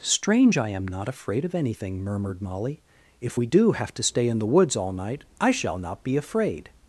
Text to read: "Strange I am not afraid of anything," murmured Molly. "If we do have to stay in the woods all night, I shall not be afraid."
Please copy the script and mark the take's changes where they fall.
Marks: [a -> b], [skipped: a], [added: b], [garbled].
"Strange I am not afraid of anything," murmured Molly. "If we do have to stay in the woods all night, I shall not be afraid."